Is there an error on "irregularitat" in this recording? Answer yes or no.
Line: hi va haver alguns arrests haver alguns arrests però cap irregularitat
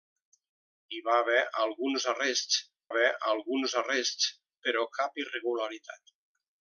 no